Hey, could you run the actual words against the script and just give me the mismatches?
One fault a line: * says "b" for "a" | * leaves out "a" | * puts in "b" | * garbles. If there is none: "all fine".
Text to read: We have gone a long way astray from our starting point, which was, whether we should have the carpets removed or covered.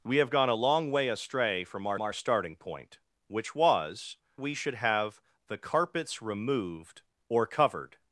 * puts in "our"
* leaves out "whether"